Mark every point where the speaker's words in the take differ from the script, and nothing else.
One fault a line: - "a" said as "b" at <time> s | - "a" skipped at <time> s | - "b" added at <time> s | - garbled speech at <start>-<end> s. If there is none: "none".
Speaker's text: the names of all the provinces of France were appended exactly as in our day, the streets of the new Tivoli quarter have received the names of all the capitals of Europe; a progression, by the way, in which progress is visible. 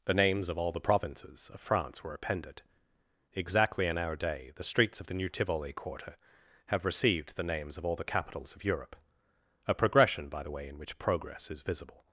- "as" skipped at 3.9 s